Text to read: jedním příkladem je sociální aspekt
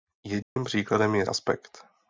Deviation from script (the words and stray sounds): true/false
true